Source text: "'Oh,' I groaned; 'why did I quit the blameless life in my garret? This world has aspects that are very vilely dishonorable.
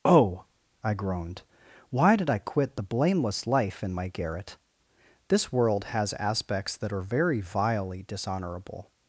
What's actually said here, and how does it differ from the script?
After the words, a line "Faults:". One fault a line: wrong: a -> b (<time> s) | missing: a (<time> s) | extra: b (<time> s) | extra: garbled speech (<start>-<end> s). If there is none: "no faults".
"'Oh,' I groaned; 'why did I quit the blameless life in my garret? This world has aspects that are very vilely dishonorable.
Faults:
no faults